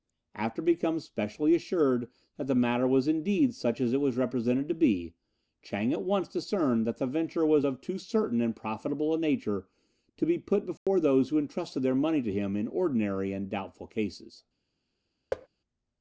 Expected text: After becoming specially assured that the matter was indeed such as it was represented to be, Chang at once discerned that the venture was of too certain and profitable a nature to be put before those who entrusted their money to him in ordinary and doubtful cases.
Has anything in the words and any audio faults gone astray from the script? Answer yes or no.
yes